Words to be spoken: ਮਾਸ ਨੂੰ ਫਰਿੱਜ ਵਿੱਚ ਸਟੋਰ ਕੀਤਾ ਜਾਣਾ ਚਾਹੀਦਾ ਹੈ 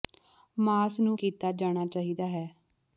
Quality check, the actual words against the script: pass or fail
fail